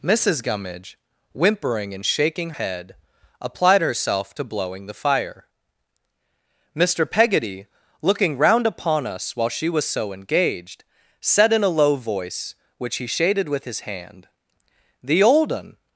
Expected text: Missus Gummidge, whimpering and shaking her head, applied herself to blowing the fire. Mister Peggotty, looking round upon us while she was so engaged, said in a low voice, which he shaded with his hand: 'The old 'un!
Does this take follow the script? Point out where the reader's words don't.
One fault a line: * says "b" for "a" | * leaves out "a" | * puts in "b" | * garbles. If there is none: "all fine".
* leaves out "her"